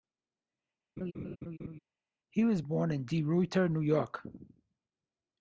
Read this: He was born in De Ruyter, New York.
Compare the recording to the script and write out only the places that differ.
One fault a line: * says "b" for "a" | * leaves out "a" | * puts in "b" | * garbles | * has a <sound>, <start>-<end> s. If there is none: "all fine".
* has a laugh, 1.0-1.8 s